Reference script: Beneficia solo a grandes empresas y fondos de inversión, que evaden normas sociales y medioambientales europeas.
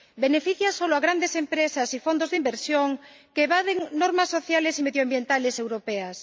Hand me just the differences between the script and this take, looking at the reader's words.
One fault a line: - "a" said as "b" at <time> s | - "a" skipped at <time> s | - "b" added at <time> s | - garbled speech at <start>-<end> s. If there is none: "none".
none